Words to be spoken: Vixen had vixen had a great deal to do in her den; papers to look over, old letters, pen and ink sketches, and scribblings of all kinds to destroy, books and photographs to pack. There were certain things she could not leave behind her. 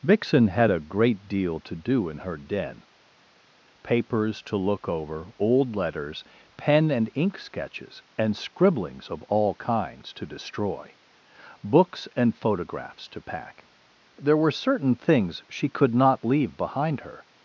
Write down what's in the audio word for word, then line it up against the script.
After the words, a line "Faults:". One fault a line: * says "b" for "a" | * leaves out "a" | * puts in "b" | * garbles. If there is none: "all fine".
Vixen had a great deal to do in her den; papers to look over, old letters, pen and ink sketches, and scribblings of all kinds to destroy, books and photographs to pack. There were certain things she could not leave behind her.
Faults:
* leaves out "vixen had"